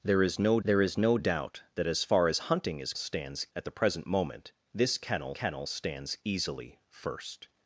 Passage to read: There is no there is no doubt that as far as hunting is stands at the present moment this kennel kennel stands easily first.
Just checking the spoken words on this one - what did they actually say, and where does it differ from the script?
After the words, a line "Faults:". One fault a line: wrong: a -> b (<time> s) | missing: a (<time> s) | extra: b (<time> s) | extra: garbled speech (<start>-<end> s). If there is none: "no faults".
There is no there is no doubt that as far as hunting is stands at the present moment this kennel kennel stands easily first.
Faults:
no faults